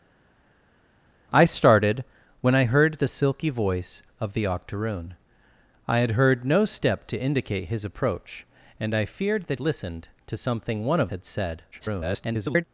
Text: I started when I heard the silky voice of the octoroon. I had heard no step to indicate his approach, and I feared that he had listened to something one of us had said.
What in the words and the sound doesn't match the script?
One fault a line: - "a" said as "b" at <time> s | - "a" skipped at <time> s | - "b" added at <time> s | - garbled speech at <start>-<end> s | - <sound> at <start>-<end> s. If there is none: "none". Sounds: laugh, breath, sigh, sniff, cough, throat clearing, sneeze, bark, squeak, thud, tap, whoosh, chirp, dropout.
- "he had" skipped at 9.6 s
- "us" skipped at 11.1 s
- garbled speech at 11.7-12.6 s